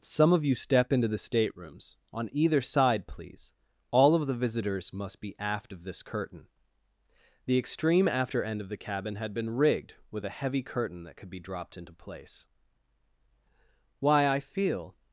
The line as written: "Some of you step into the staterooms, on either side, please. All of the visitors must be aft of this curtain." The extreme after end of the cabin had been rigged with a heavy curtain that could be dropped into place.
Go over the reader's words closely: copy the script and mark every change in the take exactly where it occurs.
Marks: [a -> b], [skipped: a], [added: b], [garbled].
"Some of you step into the staterooms, on either side, please. All of the visitors must be aft of this curtain." The extreme after end of the cabin had been rigged with a heavy curtain that could be dropped into place. [added: Why I feel]